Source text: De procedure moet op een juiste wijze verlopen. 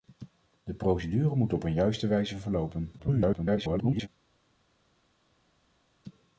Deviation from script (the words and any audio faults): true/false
true